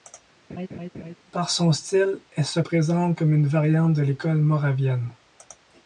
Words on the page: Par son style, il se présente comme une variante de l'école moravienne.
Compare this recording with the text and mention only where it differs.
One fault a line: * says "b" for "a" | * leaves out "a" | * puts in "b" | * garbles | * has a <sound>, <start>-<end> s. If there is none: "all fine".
* has a laugh, 0.5-1.1 s
* says "elle" for "il"